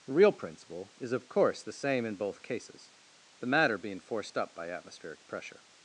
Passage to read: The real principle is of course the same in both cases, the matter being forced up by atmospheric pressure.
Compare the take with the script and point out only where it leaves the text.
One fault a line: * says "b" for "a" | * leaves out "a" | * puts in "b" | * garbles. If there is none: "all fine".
all fine